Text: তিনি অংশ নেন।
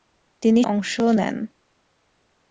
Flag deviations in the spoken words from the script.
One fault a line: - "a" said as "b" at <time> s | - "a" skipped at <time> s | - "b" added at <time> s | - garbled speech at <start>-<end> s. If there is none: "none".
none